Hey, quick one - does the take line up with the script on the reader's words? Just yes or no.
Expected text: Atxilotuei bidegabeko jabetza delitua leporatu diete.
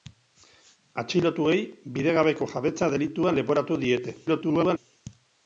no